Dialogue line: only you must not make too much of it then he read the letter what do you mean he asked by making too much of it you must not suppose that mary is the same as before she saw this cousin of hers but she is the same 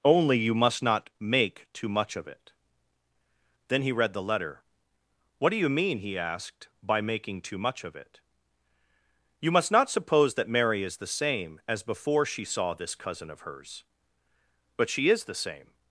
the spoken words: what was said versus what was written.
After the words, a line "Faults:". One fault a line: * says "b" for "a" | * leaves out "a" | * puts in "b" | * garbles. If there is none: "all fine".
only you must not make too much of it then he read the letter what do you mean he asked by making too much of it you must not suppose that mary is the same as before she saw this cousin of hers but she is the same
Faults:
all fine